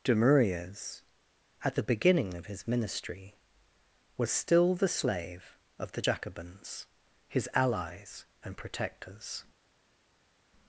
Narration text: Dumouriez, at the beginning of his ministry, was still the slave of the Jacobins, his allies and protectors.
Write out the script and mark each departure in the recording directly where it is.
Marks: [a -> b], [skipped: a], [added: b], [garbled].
Dumouriez, at the beginning of his ministry, was still the slave of the Jacobins, his allies and protectors.